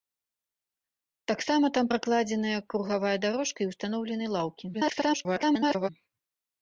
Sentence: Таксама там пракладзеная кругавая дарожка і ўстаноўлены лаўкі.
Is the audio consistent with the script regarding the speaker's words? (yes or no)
no